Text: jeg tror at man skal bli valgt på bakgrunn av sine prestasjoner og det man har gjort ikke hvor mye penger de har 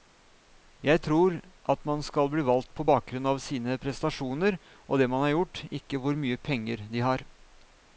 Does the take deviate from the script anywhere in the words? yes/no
no